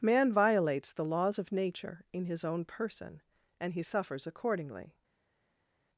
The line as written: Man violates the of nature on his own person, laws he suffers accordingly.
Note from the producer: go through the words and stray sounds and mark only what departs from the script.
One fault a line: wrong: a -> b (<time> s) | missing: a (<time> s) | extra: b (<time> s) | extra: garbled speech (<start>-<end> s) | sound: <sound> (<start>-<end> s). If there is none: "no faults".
extra: laws (1.0 s)
wrong: on -> in (2.1 s)
wrong: laws -> and (3.6 s)